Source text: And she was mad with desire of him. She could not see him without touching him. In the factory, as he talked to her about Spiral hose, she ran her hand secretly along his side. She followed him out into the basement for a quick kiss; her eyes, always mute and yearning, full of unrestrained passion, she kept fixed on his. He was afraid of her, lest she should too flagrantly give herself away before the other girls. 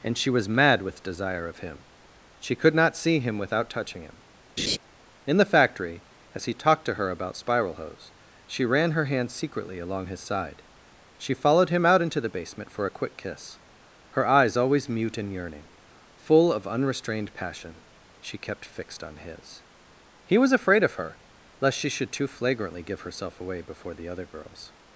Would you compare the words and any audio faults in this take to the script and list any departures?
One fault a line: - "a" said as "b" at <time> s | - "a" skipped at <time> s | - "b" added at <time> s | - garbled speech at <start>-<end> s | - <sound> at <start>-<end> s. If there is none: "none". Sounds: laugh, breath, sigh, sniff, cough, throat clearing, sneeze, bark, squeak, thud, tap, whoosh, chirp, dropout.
- laugh at 4.6-4.8 s